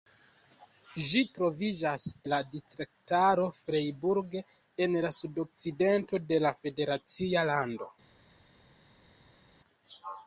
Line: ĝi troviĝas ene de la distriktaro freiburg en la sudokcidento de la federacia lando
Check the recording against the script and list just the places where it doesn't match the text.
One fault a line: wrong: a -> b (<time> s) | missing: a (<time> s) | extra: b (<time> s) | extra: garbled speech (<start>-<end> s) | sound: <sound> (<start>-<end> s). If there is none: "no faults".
missing: ene de (2.0 s)